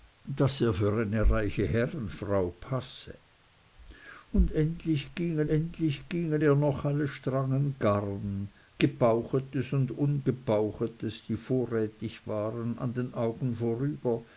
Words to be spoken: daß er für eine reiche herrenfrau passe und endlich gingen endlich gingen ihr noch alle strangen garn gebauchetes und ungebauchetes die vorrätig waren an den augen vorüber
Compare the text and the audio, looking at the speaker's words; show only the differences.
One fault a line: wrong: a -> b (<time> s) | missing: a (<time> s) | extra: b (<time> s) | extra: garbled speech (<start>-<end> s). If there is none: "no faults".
no faults